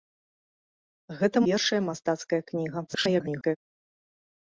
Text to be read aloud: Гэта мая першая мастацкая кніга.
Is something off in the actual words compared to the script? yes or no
yes